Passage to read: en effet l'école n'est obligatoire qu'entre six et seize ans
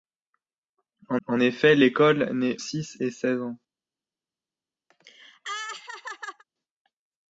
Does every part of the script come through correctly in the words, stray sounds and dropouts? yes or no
no